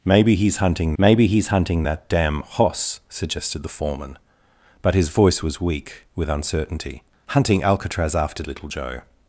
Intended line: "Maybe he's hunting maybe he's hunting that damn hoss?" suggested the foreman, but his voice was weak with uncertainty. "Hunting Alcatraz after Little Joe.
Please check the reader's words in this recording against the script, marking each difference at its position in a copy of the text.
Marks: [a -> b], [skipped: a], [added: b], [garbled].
"Maybe he's hunting maybe he's hunting that damn hoss?" suggested the foreman, but his voice was weak with uncertainty. "Hunting Alcatraz after Little Joe.